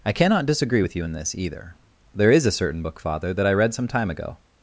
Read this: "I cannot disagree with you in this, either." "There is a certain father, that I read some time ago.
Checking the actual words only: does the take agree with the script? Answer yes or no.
no